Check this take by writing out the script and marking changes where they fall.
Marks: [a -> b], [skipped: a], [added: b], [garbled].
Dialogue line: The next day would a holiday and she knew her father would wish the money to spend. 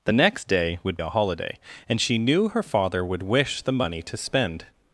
The next day would a holiday and she knew her father would wish the money to spend.